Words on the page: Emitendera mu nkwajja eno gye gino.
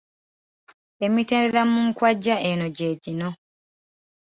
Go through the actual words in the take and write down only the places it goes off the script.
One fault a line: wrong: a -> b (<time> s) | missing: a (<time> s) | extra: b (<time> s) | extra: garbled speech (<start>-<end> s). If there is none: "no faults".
no faults